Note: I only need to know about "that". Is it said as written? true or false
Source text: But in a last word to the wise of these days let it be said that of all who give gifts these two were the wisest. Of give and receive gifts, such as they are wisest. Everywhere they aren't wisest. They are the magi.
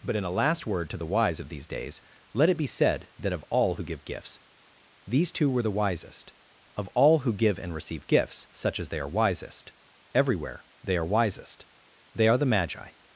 true